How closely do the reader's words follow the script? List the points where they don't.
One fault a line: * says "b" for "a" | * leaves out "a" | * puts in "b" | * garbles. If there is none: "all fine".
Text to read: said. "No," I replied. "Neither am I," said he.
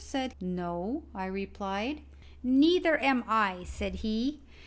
all fine